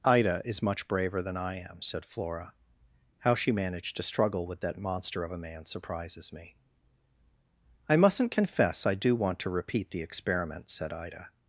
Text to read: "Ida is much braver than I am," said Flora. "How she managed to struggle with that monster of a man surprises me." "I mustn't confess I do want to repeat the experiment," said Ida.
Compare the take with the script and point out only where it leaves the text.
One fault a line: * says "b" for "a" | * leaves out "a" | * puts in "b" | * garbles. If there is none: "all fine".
all fine